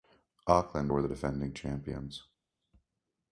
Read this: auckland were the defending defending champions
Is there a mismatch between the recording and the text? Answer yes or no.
yes